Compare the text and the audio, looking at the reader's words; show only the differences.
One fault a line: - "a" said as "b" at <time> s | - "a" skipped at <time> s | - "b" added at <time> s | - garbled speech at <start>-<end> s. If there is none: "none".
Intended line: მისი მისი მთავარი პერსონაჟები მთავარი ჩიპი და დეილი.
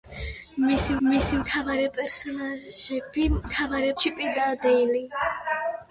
none